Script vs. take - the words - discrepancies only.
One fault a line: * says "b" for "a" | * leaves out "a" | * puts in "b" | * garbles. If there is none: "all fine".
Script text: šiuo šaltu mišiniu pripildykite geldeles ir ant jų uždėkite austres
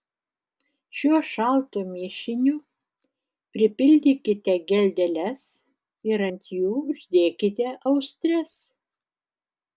all fine